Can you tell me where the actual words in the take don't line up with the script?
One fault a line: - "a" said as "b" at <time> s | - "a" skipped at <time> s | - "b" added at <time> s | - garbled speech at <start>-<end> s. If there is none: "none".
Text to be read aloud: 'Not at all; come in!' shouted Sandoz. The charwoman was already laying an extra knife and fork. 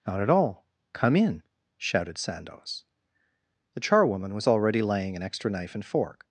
none